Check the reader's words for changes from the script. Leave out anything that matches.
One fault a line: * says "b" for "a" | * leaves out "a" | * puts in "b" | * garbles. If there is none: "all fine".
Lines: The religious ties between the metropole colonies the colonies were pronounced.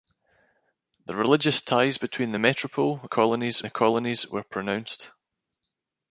all fine